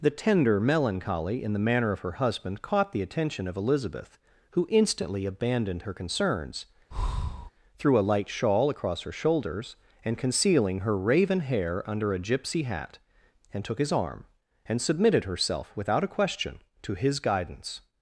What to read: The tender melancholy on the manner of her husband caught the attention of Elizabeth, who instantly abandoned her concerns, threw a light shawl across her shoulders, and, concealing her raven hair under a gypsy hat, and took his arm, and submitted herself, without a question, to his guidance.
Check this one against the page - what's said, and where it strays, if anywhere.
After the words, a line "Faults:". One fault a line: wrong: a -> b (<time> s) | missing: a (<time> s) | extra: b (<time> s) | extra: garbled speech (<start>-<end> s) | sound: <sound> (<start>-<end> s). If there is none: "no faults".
The tender melancholy in the manner of her husband caught the attention of Elizabeth, who instantly abandoned her concerns, threw a light shawl across her shoulders, and, concealing her raven hair under a gypsy hat, and took his arm, and submitted herself, without a question, to his guidance.
Faults:
wrong: on -> in (1.4 s)
sound: breath (6.9-7.5 s)